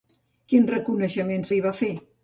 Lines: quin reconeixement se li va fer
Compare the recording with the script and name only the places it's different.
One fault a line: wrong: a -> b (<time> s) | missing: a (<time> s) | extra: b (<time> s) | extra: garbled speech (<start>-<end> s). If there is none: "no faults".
missing: se (1.5 s)